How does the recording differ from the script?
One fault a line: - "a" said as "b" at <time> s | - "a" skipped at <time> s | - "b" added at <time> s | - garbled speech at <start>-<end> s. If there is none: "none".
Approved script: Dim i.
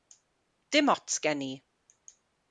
- "ots gen" added at 0.9 s